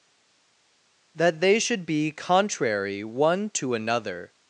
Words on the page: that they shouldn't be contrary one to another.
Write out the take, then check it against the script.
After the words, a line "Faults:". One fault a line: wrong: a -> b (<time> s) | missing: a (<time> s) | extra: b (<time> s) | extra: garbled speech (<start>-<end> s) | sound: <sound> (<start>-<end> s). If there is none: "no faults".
that they should be contrary one to another.
Faults:
wrong: shouldn't -> should (1.6 s)